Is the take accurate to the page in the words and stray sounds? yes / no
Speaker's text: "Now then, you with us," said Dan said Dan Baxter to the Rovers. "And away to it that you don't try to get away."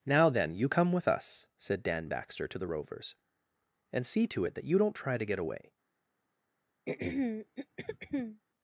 no